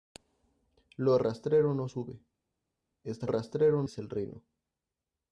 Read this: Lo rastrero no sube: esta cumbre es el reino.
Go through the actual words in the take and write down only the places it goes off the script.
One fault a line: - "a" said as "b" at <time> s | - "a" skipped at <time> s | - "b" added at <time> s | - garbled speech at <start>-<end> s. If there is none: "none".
- "cumbre" said as "rastrero" at 3.3 s